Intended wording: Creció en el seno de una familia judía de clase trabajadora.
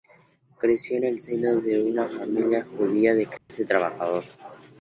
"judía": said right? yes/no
yes